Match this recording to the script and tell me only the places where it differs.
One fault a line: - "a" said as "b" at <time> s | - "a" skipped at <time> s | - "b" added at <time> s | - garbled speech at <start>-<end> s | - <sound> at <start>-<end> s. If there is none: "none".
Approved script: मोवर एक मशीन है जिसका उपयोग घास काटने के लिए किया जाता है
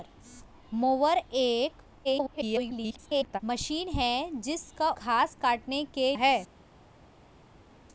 - garbled speech at 2.0-3.4 s
- "उपयोग" skipped at 4.9 s
- "लिए किया जाता" skipped at 6.2 s